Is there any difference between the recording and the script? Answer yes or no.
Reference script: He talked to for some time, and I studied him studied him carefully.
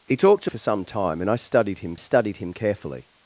no